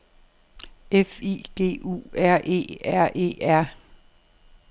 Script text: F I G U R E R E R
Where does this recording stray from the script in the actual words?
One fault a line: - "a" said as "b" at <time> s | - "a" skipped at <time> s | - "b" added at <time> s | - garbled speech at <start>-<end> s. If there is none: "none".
none